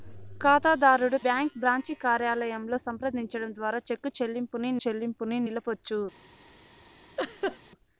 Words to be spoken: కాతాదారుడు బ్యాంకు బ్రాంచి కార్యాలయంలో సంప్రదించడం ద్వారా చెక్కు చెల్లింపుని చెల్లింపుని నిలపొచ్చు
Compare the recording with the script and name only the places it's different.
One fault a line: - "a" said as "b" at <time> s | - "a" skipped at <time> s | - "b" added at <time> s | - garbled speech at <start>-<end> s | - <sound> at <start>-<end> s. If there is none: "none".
- laugh at 7.2-7.6 s